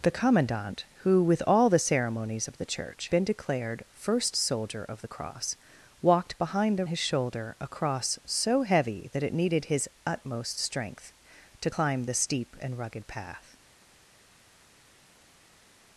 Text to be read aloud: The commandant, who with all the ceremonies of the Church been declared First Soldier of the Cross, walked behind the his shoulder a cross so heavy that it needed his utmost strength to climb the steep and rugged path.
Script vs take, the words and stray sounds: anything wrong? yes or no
no